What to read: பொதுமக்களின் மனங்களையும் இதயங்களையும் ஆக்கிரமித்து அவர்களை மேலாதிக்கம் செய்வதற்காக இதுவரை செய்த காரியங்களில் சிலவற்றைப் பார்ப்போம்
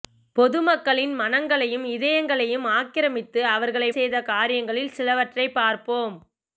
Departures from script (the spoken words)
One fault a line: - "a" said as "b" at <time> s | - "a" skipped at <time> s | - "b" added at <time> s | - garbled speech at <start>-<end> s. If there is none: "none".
- "மேலாதிக்கம் செய்வதற்காக இதுவரை" skipped at 3.9 s